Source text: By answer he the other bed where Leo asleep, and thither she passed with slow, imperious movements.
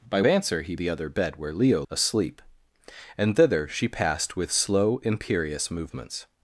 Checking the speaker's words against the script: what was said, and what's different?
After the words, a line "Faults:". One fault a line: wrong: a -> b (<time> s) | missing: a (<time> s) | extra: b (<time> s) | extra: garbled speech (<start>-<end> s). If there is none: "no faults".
By answer he the other bed where Leo asleep, and thither she passed with slow, imperious movements.
Faults:
no faults